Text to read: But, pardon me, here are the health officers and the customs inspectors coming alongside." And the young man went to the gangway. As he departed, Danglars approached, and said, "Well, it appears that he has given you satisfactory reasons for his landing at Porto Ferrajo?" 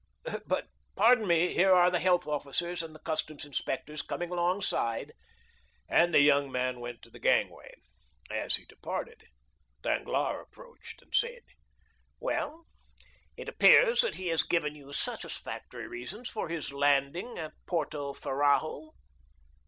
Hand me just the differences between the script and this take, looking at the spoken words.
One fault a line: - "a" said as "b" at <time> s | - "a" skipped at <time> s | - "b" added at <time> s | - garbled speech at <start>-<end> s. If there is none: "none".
none